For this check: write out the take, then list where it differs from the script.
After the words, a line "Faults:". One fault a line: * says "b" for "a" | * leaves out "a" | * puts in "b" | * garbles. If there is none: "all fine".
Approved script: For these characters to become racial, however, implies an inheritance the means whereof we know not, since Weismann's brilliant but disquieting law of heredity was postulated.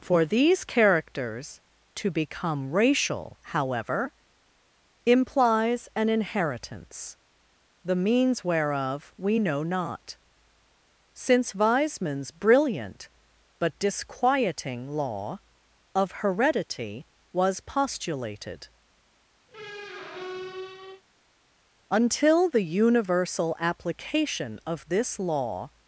For these characters to become racial, however, implies an inheritance the means whereof we know not, since Weismann's brilliant but disquieting law of heredity was postulated. Until the universal application of this law
Faults:
* puts in "Until the universal application of this law"